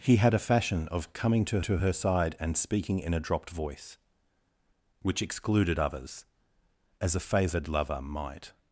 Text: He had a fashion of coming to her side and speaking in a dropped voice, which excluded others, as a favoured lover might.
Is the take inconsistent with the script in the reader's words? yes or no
yes